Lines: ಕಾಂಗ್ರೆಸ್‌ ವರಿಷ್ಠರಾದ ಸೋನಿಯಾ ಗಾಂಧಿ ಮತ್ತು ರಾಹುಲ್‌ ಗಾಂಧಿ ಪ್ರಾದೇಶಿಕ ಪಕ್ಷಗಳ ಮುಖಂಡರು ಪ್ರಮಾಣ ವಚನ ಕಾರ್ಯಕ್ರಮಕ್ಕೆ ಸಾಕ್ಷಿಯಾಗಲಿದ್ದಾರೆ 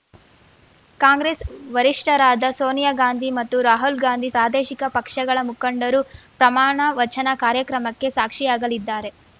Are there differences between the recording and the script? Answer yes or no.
no